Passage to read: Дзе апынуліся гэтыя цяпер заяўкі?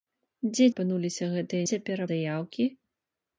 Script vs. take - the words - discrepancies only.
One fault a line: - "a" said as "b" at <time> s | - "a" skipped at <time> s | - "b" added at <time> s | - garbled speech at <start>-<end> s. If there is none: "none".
none